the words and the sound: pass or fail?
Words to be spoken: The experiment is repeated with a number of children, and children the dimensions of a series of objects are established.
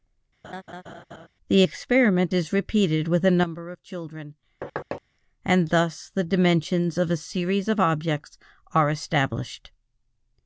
fail